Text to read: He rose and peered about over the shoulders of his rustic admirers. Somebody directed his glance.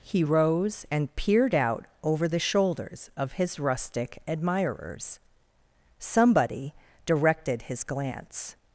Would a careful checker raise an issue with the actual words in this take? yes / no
yes